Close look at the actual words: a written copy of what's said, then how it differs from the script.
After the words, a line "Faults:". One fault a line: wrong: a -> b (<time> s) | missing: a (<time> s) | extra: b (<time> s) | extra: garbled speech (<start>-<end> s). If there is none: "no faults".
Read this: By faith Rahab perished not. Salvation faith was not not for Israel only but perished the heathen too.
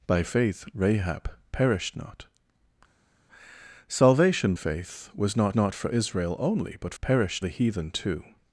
By faith Rahab perished not. Salvation faith was not not for Israel only but perished the heathen too.
Faults:
no faults